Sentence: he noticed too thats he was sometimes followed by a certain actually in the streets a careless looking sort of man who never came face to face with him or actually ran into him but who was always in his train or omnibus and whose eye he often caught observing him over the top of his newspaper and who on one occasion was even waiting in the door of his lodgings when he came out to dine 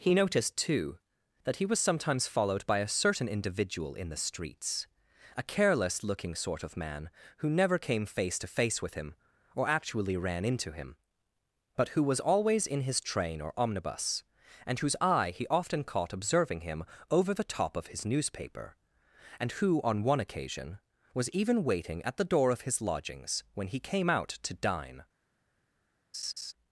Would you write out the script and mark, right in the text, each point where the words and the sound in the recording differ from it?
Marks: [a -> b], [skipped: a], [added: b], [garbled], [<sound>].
he noticed too [thats -> that] he was sometimes followed by a certain [actually -> individual] in the streets a careless looking sort of man who never came face to face with him or actually ran into him but who was always in his train or omnibus and whose eye he often caught observing him over the top of his newspaper and who on one occasion was even waiting [in -> at] the door of his lodgings when he came out to dine [laugh]